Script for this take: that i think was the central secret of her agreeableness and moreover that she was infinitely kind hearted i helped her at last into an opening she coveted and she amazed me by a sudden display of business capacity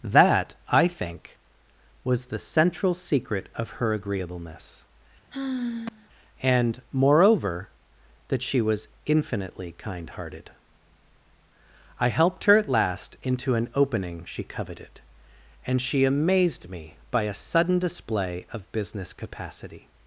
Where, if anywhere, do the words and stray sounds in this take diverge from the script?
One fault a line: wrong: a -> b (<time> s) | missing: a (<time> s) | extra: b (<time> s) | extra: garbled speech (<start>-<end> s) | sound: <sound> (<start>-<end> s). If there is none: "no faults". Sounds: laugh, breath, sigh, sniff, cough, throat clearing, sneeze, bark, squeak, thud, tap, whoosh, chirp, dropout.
sound: sigh (5.3-6.1 s)